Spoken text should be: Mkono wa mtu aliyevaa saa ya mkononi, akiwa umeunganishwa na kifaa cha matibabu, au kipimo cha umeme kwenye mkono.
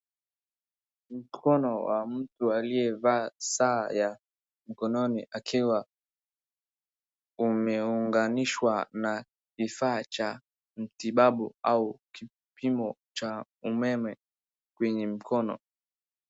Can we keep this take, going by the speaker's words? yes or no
yes